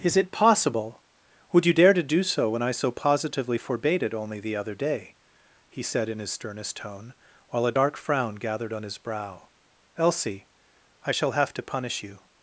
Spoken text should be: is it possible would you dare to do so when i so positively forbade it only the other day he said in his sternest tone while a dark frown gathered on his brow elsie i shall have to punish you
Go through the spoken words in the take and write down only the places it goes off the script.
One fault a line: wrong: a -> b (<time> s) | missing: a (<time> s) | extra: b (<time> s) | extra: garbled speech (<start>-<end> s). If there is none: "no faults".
no faults